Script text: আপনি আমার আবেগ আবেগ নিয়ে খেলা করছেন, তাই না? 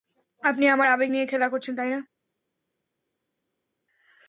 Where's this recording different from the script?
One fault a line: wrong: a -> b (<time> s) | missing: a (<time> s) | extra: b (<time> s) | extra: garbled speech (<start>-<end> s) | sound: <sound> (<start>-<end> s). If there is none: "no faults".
missing: আবেগ (1.1 s)